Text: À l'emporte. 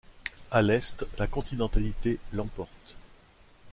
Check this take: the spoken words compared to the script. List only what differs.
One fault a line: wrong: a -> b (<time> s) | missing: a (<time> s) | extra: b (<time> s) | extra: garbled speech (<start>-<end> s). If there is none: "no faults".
extra: l'est la continentalité (0.6 s)